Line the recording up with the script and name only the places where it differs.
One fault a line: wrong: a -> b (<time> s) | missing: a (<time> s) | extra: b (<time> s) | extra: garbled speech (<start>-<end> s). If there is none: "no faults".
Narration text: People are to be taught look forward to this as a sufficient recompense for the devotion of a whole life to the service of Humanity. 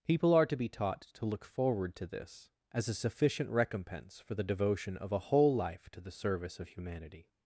extra: to (1.0 s)